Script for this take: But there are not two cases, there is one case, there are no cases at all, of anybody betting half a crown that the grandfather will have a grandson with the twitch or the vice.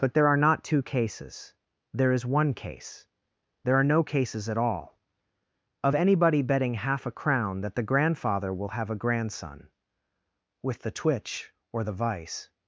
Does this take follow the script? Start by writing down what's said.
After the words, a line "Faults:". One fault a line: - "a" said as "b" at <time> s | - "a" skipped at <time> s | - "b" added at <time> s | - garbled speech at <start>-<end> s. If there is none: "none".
But there are not two cases, there is one case, there are no cases at all, of anybody betting half a crown that the grandfather will have a grandson with the twitch or the vice.
Faults:
none